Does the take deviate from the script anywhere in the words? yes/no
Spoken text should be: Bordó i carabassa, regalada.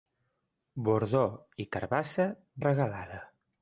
no